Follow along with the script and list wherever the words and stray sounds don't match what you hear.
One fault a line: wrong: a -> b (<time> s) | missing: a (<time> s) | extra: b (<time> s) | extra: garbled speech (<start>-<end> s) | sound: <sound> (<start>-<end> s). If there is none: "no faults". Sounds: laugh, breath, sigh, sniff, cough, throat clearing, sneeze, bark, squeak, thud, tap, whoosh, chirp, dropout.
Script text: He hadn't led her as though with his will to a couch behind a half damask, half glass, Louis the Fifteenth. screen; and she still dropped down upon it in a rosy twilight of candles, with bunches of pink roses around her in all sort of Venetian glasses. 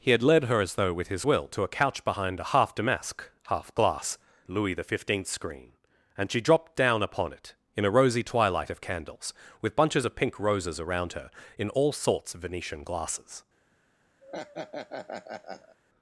wrong: hadn't -> had (0.1 s)
missing: still (6.4 s)
wrong: sort -> sorts (11.9 s)
sound: laugh (14.2-15.8 s)